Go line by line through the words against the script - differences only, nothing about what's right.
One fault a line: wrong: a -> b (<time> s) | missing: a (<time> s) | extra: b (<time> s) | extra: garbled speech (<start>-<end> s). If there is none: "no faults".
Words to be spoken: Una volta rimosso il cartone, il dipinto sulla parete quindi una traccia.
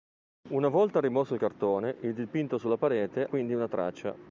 no faults